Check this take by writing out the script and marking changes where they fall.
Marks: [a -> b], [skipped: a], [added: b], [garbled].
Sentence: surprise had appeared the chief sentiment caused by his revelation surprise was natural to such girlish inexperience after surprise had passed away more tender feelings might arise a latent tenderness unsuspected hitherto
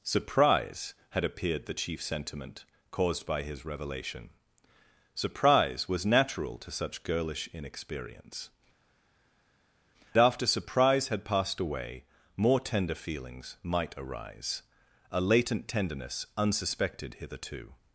surprise had appeared the chief sentiment caused by his revelation surprise was natural to such girlish inexperience after surprise had passed away more tender feelings might arise a latent tenderness unsuspected hitherto